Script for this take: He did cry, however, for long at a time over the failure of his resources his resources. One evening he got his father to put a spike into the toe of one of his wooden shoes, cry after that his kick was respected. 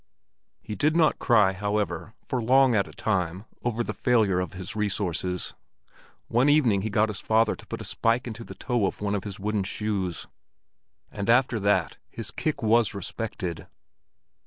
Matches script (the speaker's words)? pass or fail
fail